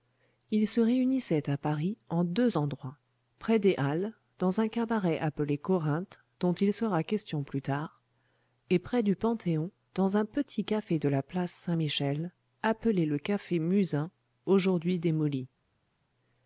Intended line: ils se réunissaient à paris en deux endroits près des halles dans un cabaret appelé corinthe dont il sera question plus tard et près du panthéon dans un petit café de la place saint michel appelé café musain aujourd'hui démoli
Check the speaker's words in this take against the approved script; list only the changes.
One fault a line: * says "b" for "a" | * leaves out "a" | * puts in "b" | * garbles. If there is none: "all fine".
* puts in "le"